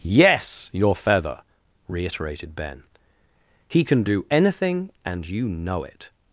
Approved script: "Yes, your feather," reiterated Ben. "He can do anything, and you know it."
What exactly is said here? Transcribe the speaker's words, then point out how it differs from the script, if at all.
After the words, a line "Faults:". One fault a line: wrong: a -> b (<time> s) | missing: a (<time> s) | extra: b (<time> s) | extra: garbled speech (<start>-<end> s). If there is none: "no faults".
"Yes, your feather," reiterated Ben. "He can do anything, and you know it."
Faults:
no faults